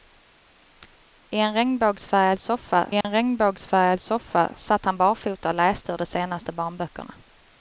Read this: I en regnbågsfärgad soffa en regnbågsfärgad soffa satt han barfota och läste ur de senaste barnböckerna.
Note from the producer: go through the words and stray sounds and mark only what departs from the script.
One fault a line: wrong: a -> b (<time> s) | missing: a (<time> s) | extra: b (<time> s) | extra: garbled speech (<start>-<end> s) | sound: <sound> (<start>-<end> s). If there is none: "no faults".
sound: dropout (3.0-3.0 s)